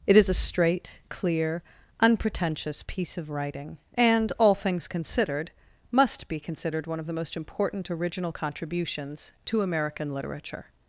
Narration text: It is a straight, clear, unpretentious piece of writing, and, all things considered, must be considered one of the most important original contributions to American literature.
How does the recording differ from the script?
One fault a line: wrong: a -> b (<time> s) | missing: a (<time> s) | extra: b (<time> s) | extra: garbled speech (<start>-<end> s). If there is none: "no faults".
no faults